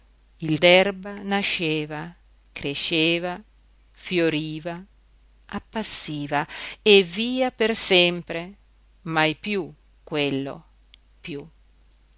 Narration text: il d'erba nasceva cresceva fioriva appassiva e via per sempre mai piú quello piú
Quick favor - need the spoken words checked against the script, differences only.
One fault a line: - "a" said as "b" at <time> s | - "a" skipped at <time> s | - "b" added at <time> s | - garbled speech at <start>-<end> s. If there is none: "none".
none